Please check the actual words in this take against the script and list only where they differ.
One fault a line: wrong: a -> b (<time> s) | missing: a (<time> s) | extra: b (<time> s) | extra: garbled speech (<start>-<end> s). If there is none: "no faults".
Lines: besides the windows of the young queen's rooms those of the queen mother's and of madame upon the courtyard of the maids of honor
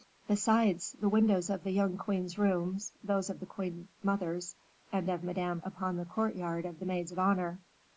no faults